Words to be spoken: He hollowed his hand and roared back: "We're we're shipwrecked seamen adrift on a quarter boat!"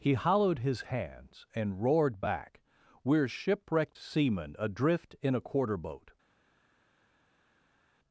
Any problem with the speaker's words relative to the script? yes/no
yes